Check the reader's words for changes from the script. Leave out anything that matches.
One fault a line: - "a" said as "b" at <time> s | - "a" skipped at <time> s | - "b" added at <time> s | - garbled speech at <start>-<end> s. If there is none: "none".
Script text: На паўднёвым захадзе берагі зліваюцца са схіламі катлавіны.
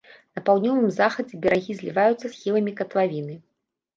- "са" skipped at 2.3 s